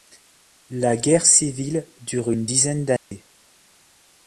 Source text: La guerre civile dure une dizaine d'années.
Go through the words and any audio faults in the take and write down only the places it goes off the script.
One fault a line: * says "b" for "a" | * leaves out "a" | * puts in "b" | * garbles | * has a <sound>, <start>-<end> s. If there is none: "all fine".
* has a dropout, 3.0-3.1 s